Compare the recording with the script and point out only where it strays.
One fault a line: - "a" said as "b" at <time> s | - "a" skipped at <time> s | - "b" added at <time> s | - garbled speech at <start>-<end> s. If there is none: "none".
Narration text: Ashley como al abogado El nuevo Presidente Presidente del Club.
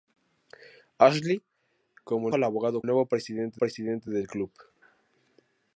none